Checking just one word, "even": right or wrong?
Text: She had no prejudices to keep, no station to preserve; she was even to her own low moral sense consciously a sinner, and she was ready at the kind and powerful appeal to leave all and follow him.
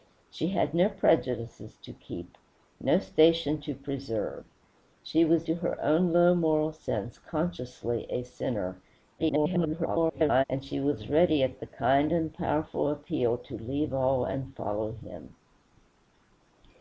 wrong